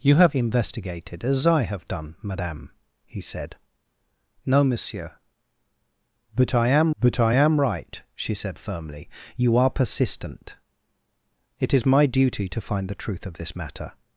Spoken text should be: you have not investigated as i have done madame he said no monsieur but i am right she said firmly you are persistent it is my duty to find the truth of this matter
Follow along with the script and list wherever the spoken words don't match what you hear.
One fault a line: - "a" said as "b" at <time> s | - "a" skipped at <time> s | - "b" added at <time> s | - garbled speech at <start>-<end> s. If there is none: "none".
- "not" skipped at 0.3 s
- "but i am" added at 7.0 s